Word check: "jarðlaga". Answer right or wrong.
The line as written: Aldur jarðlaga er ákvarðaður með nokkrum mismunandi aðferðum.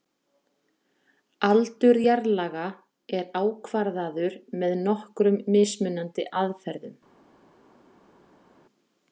right